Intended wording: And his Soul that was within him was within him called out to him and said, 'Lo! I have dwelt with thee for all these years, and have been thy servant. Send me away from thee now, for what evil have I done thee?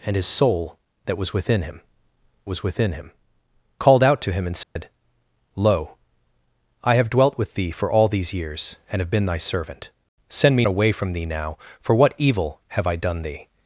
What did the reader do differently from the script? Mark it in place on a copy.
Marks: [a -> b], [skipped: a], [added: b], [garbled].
And his Soul that was within him was within him called out to him and said, 'Lo! I have dwelt with thee for all these years, and have been thy servant. Send me away from thee now, for what evil have I done thee?